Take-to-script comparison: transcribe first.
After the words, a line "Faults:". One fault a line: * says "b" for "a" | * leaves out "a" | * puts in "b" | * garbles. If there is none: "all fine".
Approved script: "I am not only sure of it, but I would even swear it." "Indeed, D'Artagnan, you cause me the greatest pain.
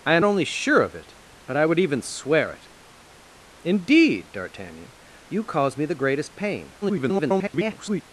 "I am only sure of it, but I would even swear it." "Indeed, D'Artagnan, you cause me the greatest pain. [garbled]
Faults:
* leaves out "not"
* garbles